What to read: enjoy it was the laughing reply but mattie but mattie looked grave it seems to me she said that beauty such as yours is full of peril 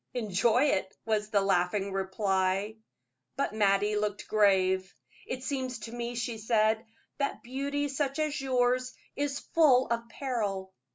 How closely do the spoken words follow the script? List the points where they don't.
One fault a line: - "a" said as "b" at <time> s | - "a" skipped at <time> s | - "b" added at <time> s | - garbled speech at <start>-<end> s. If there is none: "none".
- "but mattie" skipped at 4.0 s